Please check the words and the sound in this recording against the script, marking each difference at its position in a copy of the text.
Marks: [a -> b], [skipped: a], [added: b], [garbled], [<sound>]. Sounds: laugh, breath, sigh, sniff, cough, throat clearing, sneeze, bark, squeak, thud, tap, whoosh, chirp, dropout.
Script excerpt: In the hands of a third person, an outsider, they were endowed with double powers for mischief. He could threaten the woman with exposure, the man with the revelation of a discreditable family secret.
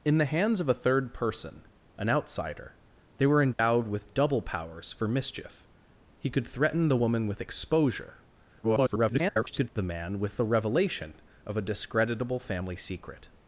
In the hands of a third person, an outsider, they were endowed [dropout] with double powers for mischief. He could threaten the woman with exposure, [garbled] the man with the revelation of a discreditable family secret.